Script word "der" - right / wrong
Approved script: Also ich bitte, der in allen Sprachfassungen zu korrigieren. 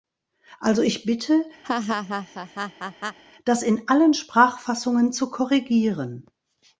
wrong